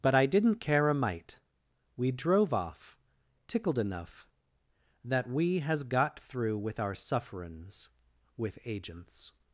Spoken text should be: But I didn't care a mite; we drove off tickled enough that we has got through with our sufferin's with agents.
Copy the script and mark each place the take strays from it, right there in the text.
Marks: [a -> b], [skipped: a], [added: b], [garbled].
But I didn't care a mite; we drove off tickled enough that we has got through with our sufferin's with agents.